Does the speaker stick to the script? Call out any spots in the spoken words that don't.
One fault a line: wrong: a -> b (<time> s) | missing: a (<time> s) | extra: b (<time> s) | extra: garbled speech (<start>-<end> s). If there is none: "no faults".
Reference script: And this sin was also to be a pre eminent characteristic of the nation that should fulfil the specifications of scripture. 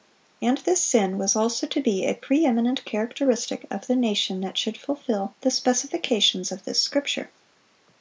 extra: this (6.6 s)